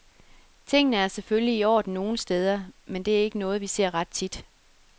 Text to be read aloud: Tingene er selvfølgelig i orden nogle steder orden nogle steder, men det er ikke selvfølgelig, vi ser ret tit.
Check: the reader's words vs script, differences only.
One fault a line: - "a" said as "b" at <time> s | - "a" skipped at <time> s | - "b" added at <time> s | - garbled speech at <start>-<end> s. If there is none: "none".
- "orden nogle steder" skipped at 2.6 s
- "selvfølgelig" said as "noget" at 3.4 s